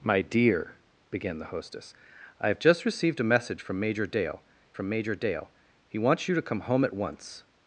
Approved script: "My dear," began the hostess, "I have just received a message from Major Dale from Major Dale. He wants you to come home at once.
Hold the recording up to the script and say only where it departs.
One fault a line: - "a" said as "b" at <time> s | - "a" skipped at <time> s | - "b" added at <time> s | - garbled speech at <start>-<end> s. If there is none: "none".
none